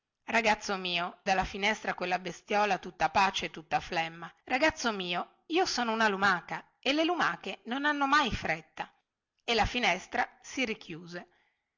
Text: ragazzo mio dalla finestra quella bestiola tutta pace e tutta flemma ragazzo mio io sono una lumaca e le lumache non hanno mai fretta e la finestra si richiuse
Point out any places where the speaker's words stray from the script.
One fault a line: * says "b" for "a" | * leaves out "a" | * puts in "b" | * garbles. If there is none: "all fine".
all fine